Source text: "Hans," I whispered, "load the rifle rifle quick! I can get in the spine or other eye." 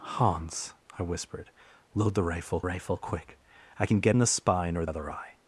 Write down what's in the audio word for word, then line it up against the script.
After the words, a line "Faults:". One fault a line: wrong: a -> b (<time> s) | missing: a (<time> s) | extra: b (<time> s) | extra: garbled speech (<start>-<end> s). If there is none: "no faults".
"Hans," I whispered, "load the rifle rifle quick! I can get in the spine or other eye."
Faults:
no faults